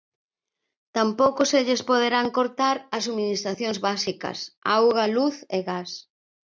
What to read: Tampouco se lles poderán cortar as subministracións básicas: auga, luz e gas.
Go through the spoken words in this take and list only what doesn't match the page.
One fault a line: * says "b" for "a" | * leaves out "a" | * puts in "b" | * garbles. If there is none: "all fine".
all fine